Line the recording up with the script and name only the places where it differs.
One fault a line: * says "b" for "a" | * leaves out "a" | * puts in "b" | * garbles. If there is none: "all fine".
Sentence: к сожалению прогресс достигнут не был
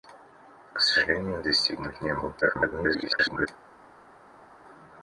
* leaves out "прогресс"
* garbles